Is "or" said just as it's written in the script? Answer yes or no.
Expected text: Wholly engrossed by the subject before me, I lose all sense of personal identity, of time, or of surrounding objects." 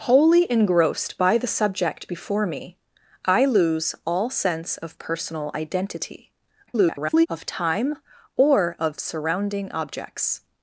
yes